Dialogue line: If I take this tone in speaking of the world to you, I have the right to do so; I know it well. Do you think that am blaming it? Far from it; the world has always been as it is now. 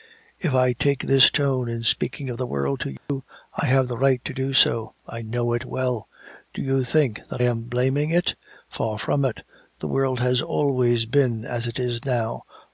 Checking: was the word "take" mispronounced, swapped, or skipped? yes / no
no